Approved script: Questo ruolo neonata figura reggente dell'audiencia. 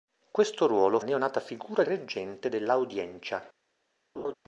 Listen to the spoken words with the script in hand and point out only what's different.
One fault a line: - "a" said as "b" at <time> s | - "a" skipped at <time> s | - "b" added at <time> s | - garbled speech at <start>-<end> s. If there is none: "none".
none